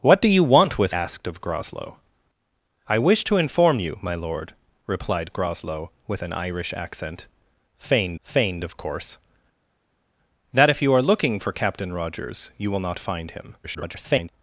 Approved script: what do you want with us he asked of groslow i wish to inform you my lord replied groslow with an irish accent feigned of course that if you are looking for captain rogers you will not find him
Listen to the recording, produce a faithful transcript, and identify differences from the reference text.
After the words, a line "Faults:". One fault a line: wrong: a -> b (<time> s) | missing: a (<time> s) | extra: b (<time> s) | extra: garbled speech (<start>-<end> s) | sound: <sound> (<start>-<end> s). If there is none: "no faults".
what do you want with asked of groslow i wish to inform you my lord replied groslow with an irish accent feigned feigned of course that if you are looking for captain rogers you will not find him [garbled]
Faults:
missing: us he (0.9 s)
extra: feigned (8.2 s)
extra: garbled speech (13.6-14.3 s)